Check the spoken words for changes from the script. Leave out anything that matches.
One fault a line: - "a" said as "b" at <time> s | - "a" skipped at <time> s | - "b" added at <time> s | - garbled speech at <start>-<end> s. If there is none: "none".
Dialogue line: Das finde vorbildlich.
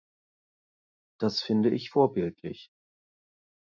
- "ich" added at 1.7 s